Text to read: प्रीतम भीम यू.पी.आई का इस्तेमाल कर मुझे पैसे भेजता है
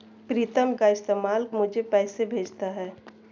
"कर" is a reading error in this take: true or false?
true